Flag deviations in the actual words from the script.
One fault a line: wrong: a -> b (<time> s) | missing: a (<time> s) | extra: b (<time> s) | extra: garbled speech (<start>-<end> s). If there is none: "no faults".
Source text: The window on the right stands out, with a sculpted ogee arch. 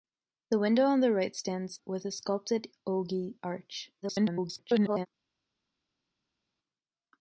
missing: out (1.8 s)
extra: garbled speech (4.0-5.1 s)